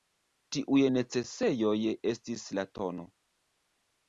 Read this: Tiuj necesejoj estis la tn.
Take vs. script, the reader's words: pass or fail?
pass